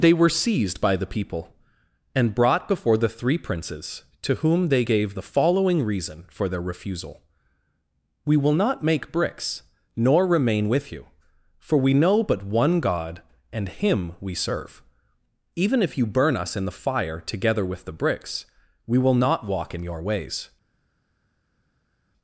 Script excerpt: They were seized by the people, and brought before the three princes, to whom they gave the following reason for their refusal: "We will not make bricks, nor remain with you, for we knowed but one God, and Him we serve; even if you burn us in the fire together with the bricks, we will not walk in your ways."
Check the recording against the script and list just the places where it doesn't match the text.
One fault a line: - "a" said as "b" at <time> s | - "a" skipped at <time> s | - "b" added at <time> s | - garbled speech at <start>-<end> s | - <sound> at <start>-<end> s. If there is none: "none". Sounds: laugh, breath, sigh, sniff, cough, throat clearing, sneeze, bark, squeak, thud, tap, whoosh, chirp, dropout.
- "knowed" said as "know" at 11.9 s